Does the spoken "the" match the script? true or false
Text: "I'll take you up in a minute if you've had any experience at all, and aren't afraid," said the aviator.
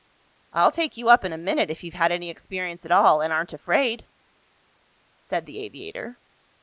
true